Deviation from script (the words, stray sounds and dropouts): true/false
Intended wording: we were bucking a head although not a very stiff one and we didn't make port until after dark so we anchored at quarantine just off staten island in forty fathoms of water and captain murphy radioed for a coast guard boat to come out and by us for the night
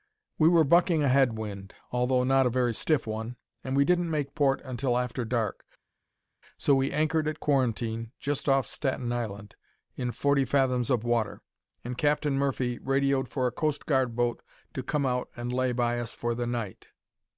true